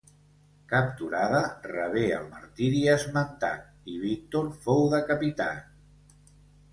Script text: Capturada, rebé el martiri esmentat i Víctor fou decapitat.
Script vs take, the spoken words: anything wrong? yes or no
no